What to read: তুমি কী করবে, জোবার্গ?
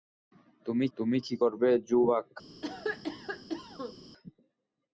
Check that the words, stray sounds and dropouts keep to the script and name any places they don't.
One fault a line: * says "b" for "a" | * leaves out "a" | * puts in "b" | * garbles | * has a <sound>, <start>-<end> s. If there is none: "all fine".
* puts in "তুমি"
* has a cough, 2.6-3.9 s